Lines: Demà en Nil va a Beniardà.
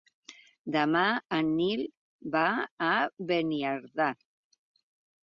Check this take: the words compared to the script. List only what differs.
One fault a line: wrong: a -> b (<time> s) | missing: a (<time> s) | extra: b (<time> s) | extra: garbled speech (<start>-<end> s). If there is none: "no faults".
no faults